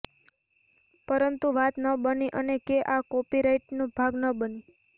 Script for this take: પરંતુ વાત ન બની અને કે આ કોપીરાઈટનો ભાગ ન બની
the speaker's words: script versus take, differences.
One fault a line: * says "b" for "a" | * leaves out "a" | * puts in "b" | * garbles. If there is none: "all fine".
all fine